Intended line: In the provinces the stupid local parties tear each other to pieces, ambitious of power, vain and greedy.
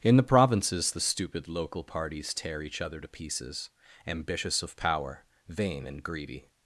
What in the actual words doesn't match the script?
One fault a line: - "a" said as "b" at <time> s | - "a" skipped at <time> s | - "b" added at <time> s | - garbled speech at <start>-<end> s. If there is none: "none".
none